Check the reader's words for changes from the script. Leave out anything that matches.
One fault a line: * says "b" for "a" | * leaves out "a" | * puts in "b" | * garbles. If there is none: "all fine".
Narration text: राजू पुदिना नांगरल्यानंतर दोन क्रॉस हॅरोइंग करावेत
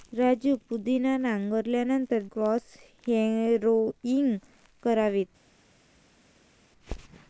* leaves out "दोन"